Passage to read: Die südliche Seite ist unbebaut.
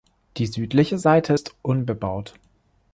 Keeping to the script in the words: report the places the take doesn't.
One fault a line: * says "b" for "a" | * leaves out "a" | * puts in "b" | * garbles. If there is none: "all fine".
all fine